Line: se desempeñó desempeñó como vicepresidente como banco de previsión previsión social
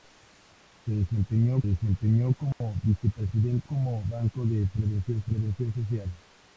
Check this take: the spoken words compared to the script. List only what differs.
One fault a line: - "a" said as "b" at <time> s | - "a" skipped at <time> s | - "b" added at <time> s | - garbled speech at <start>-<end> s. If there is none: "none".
none